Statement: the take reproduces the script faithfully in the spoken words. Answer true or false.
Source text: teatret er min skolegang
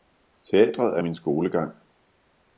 true